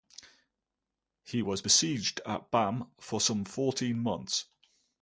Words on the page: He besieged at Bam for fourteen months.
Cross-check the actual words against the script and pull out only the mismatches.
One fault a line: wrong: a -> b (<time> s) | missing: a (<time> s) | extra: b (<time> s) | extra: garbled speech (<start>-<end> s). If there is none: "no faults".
extra: was (1.4 s)
extra: some (3.2 s)